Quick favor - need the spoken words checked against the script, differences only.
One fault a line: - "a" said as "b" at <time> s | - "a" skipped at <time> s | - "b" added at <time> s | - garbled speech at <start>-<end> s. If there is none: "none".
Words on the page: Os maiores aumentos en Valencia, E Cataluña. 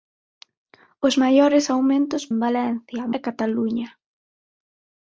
none